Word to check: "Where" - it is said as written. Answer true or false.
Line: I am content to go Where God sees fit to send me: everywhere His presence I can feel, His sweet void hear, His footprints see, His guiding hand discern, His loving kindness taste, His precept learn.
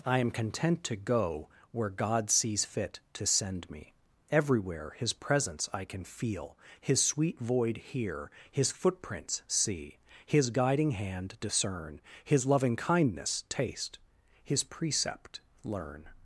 true